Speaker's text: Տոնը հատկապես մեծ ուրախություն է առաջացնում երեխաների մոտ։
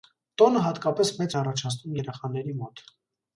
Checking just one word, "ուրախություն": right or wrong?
wrong